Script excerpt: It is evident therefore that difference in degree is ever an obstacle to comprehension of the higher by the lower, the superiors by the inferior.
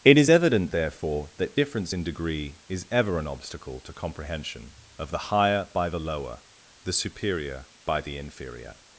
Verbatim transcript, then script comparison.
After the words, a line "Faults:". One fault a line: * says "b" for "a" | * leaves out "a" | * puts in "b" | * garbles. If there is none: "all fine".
It is evident therefore that difference in degree is ever an obstacle to comprehension of the higher by the lower, the superior by the inferior.
Faults:
* says "superior" for "superiors"